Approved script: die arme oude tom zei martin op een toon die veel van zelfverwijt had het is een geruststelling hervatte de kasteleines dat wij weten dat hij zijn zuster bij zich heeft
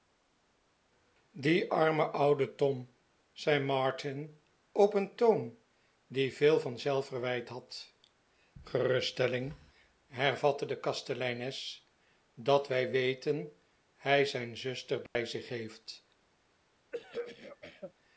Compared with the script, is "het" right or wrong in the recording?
wrong